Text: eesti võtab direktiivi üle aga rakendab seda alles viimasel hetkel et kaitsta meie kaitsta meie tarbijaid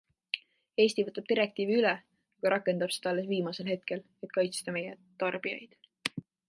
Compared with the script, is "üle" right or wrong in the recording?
right